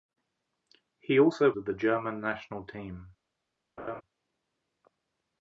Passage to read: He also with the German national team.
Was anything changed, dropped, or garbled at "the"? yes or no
no